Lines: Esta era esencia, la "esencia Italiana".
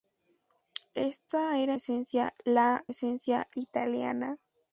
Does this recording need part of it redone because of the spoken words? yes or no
no